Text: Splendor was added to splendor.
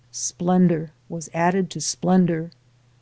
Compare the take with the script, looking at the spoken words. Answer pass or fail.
pass